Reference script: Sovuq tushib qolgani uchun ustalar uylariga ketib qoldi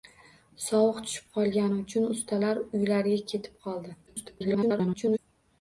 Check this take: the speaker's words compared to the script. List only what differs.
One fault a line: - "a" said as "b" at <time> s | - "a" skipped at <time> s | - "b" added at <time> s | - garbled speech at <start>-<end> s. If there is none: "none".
- garbled speech at 4.1-5.2 s